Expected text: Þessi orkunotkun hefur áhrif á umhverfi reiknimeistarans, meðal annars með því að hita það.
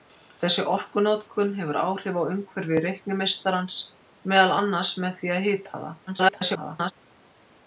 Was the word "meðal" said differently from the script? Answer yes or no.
no